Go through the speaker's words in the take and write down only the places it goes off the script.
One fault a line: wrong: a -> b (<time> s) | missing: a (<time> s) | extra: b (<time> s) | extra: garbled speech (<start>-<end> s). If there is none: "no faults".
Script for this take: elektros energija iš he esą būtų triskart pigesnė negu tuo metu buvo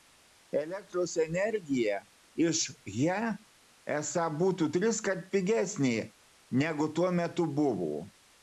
no faults